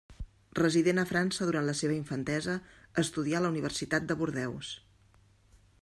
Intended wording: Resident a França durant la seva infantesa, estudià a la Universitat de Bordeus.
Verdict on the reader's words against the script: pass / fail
pass